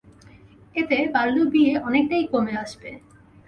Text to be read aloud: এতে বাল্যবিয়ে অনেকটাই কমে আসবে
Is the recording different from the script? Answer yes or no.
no